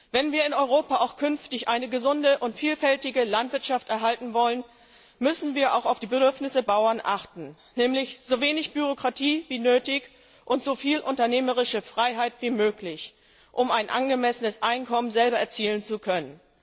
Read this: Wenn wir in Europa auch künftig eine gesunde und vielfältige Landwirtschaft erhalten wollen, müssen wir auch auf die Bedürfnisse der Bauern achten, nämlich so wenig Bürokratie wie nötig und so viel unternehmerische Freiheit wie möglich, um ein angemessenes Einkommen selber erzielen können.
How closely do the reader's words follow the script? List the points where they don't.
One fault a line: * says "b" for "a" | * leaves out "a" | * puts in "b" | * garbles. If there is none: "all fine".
* puts in "zu"